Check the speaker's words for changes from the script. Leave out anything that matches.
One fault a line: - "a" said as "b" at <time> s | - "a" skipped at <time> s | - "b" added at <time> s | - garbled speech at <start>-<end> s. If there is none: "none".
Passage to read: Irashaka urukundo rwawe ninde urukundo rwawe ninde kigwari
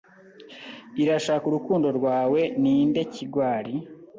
- "urukundo rwawe ninde" skipped at 3.0 s